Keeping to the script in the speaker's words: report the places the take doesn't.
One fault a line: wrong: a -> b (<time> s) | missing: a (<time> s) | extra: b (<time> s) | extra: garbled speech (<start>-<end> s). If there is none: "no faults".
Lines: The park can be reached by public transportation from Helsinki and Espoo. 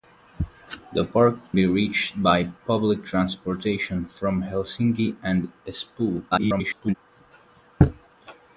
missing: can (1.5 s)
extra: garbled speech (6.3-7.0 s)